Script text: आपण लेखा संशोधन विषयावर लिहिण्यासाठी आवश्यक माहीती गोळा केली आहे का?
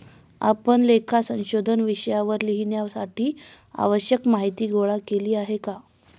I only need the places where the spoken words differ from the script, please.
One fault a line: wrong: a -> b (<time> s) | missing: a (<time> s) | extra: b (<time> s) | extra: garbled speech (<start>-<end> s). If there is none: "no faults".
no faults